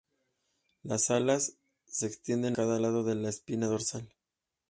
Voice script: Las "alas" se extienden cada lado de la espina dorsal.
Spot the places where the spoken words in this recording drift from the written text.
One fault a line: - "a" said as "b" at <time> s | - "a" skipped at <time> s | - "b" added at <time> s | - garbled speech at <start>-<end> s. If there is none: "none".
none